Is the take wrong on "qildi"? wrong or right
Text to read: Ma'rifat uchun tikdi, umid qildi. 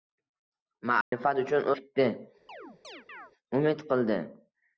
right